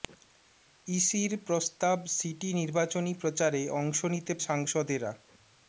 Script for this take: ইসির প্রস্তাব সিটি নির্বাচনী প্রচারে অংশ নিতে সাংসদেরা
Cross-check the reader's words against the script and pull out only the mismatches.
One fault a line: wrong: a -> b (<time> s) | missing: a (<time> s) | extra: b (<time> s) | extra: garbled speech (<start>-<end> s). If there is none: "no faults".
no faults